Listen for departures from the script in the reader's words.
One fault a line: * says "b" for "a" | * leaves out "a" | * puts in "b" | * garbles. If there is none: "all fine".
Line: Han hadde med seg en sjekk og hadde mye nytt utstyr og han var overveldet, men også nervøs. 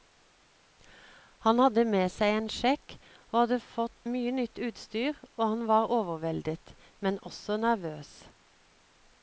* puts in "fått"